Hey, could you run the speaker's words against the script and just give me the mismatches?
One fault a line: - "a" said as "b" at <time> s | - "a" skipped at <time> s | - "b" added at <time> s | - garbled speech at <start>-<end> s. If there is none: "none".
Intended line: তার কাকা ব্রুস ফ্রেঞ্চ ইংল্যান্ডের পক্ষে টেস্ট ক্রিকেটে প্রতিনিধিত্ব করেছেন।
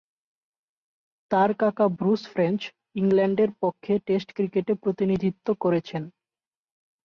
none